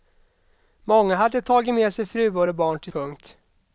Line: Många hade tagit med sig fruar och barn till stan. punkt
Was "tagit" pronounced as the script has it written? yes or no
yes